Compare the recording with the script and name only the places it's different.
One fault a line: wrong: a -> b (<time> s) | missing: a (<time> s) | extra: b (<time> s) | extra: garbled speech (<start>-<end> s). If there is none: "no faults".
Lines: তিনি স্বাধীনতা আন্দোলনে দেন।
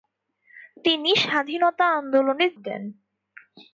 no faults